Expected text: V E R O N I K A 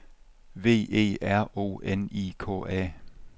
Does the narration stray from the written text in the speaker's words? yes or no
no